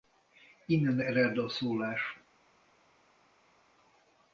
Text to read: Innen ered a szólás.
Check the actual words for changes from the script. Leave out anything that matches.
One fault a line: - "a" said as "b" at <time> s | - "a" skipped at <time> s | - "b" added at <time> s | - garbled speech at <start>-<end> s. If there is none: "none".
none